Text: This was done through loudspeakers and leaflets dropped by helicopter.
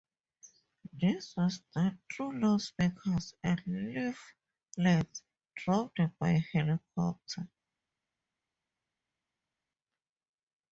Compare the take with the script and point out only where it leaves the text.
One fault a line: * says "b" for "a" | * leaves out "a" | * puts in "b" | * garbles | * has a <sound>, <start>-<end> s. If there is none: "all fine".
all fine